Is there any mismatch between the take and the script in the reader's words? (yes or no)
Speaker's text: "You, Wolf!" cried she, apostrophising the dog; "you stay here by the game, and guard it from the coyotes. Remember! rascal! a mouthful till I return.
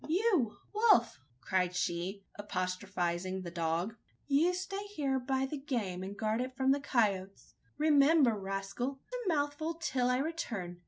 no